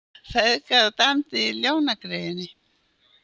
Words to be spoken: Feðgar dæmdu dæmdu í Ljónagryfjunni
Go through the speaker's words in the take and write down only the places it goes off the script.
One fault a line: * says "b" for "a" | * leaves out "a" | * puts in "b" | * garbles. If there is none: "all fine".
* leaves out "dæmdu"